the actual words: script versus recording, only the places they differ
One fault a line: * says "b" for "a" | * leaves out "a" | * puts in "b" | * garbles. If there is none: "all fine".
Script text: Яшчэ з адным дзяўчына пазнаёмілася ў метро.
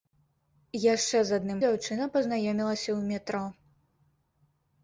all fine